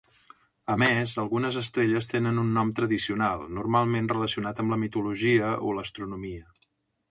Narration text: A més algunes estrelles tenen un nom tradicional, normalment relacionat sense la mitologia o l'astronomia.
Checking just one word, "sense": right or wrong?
wrong